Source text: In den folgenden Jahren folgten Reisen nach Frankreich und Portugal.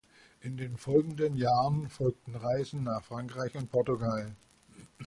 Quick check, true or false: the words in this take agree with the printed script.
true